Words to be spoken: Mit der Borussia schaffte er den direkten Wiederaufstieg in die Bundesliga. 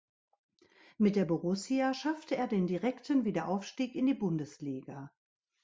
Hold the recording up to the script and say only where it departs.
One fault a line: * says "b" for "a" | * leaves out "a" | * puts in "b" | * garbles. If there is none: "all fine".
all fine